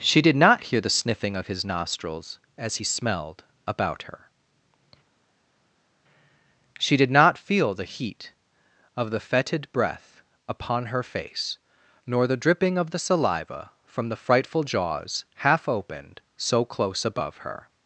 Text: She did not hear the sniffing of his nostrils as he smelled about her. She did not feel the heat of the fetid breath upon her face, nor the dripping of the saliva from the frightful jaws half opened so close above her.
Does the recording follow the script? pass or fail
pass